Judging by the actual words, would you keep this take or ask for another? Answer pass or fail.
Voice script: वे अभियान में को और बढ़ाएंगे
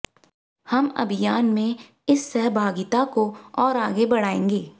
fail